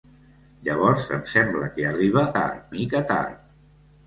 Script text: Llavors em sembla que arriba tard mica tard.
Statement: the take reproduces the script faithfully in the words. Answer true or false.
true